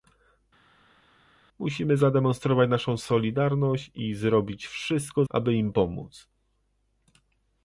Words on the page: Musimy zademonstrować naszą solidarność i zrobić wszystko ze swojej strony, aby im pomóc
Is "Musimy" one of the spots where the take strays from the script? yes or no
no